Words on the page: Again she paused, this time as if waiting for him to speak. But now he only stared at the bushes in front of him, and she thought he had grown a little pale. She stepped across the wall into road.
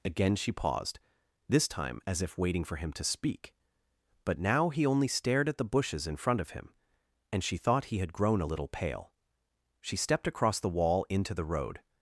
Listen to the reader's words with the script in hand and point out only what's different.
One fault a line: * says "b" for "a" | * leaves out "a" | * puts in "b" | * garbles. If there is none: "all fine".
* puts in "the"